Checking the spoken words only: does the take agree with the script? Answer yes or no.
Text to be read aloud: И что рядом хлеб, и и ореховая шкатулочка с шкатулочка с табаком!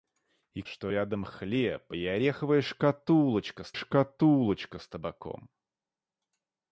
yes